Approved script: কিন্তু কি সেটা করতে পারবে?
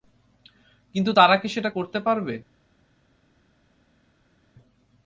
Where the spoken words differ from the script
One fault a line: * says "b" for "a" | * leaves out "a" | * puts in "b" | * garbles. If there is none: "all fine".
* puts in "তারা"